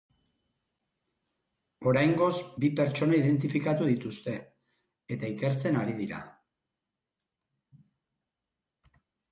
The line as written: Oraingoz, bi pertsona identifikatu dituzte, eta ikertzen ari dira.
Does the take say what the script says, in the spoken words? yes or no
yes